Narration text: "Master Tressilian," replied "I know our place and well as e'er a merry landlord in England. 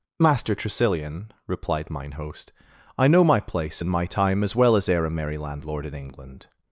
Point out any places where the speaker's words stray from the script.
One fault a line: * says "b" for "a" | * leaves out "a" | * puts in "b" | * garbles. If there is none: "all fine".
* puts in "mine host"
* says "my" for "our"
* puts in "my time as"